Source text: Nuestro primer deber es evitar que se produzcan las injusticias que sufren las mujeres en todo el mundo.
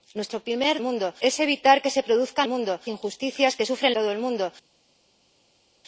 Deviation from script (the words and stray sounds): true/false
true